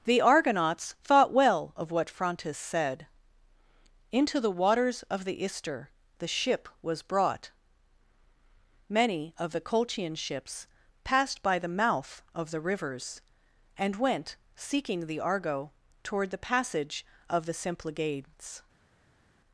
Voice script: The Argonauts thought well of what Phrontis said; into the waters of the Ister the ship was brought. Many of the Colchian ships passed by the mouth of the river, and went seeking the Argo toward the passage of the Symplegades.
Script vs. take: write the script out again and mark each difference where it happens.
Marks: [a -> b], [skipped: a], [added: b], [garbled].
The Argonauts thought well of what Phrontis said; into the waters of the Ister the ship was brought. Many of the Colchian ships passed by the mouth of the [river, -> rivers] and went seeking the Argo toward the passage of the Symplegades.